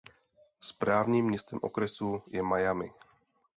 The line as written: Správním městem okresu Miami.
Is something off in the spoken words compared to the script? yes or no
yes